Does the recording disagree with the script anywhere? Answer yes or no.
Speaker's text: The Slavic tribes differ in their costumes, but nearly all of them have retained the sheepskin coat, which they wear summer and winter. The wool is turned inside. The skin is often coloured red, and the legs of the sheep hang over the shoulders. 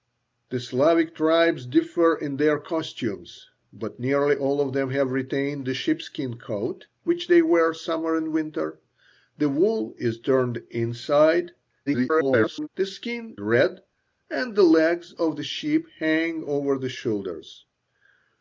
yes